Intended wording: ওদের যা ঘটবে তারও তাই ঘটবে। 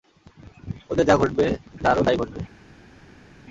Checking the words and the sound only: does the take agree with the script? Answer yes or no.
yes